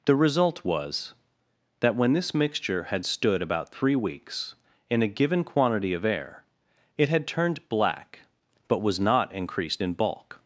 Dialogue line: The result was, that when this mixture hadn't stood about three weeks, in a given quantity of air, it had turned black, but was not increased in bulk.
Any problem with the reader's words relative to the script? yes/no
yes